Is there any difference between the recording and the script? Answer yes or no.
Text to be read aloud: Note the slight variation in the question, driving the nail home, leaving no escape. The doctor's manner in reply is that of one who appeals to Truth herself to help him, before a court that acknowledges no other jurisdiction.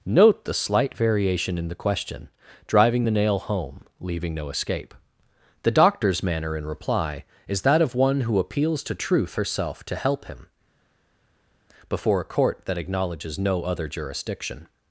no